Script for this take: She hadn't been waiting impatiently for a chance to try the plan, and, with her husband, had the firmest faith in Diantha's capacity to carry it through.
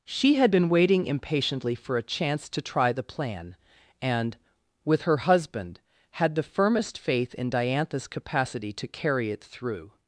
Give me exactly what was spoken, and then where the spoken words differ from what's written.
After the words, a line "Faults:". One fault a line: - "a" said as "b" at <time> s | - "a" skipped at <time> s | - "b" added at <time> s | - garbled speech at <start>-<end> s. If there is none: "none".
She had been waiting impatiently for a chance to try the plan, and, with her husband, had the firmest faith in Diantha's capacity to carry it through.
Faults:
- "hadn't" said as "had" at 0.3 s